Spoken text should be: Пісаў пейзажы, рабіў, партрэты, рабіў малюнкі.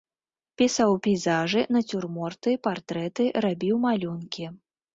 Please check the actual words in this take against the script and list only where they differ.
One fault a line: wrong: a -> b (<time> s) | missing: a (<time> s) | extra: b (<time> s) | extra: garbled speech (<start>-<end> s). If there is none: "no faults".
wrong: рабіў -> нацюрморты (1.8 s)